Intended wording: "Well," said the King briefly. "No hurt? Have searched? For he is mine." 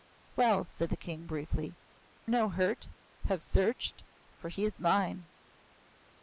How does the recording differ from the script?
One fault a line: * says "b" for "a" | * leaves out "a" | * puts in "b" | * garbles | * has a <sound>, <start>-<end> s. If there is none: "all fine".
all fine